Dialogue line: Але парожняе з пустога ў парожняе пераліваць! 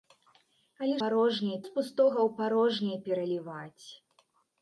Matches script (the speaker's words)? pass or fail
pass